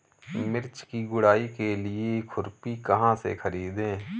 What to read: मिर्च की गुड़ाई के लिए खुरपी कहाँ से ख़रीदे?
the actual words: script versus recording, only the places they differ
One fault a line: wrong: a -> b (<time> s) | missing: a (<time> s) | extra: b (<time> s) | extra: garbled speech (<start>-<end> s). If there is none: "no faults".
no faults